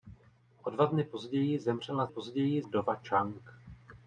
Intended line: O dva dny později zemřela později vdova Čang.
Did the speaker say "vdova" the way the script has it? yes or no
yes